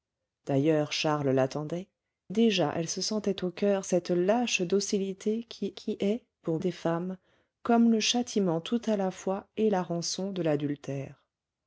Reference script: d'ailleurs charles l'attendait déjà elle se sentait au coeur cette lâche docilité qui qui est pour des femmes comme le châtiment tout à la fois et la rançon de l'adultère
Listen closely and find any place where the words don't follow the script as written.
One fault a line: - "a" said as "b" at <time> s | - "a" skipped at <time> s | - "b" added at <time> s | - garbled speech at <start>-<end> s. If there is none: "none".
none